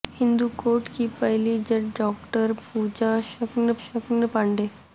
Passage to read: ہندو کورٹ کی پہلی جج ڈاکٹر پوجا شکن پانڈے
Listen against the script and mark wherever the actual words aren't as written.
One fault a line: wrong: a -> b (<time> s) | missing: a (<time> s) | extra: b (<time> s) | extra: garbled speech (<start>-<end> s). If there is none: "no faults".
extra: شکن (3.8 s)